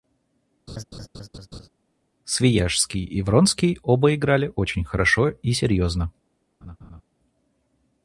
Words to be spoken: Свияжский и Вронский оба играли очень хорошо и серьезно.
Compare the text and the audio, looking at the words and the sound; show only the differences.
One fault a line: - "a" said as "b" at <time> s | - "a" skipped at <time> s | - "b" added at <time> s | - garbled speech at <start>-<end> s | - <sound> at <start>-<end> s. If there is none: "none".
- laugh at 0.7-1.7 s
- laugh at 6.6-7.0 s